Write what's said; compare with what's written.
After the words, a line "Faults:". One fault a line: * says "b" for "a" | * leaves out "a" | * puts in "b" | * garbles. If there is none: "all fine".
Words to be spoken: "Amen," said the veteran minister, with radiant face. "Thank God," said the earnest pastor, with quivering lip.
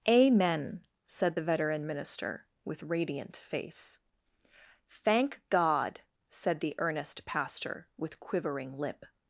"Amen," said the veteran minister, with radiant face. "Thank God," said the earnest pastor, with quivering lip.
Faults:
all fine